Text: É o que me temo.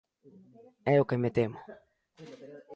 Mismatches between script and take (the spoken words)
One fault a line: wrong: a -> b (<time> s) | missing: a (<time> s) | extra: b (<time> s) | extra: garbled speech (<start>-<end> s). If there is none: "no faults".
no faults